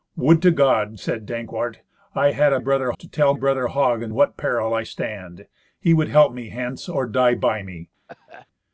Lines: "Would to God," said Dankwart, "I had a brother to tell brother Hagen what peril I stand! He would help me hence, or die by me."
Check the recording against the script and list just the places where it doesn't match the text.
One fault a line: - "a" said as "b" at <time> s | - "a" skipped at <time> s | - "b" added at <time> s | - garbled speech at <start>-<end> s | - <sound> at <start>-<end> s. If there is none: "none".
- cough at 8.1-8.5 s